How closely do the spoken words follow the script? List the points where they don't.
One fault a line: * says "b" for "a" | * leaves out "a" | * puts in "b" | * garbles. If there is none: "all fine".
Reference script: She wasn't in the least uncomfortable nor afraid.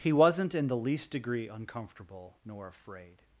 * says "He" for "She"
* puts in "degree"